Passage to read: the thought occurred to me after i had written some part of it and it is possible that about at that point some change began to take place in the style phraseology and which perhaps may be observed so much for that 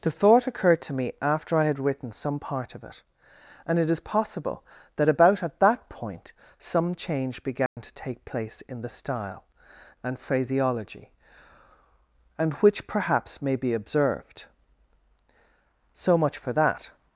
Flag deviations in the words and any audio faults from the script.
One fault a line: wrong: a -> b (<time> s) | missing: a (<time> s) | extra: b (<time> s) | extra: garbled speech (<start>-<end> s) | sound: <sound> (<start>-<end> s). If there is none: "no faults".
sound: dropout (7.7-7.8 s)
extra: and (10.0 s)